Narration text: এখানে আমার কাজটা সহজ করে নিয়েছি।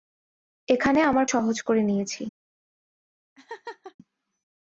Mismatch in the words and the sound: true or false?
true